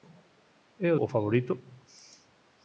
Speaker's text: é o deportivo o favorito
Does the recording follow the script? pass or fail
fail